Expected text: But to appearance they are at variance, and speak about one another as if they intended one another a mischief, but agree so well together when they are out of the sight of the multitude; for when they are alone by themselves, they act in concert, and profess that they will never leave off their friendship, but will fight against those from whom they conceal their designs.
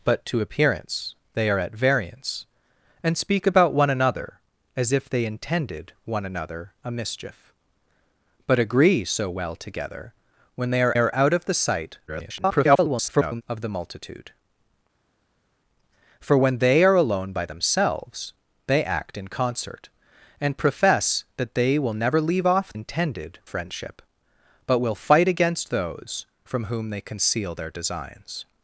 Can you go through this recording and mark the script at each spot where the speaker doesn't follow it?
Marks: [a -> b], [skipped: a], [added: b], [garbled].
But to appearance they are at variance, and speak about one another as if they intended one another a mischief, but agree so well together when they are [added: are] out of the sight [garbled] of the multitude; for when they are alone by themselves, they act in concert, and profess that they will never leave off [their -> intended] friendship, but will fight against those from whom they conceal their designs.